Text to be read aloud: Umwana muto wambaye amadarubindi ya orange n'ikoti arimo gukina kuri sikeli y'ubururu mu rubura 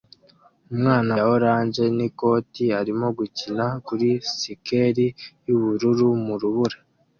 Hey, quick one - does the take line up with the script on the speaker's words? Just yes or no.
no